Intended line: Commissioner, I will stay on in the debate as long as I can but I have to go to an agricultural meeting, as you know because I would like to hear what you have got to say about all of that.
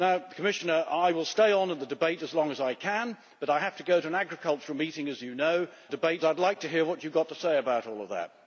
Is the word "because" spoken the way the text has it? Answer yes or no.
no